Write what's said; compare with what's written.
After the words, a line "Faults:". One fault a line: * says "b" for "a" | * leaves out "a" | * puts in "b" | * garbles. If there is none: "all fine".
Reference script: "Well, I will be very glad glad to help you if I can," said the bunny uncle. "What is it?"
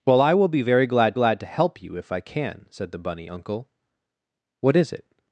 "Well, I will be very glad glad to help you if I can," said the bunny uncle. "What is it?"
Faults:
all fine